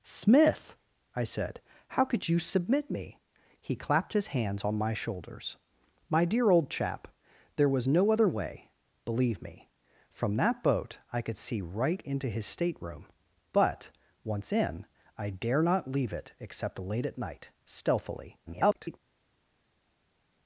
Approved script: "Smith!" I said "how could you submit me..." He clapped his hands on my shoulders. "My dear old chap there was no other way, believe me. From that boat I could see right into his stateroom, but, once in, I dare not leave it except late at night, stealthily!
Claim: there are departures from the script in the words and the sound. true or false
true